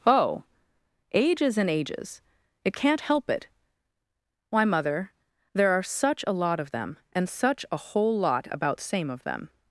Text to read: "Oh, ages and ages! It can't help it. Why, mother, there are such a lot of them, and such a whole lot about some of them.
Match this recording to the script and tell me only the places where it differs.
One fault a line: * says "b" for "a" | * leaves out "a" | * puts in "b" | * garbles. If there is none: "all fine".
* says "same" for "some"